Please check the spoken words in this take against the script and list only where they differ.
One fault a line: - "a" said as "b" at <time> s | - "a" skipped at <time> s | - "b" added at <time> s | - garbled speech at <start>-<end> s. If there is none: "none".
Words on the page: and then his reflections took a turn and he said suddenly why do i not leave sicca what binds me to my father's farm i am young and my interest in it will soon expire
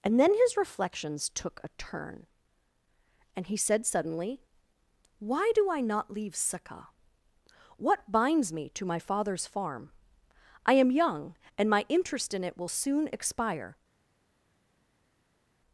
none